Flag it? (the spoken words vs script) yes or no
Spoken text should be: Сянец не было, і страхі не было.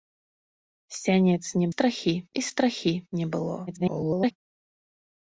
yes